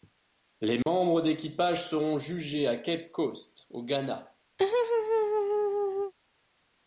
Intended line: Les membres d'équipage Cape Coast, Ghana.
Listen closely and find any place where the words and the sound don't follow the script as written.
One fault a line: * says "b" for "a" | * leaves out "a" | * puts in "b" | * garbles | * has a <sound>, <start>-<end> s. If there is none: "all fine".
* has a dropout, 0.8-0.9 s
* puts in "seront jugés à"
* puts in "au"
* has a laugh, 4.6-6.1 s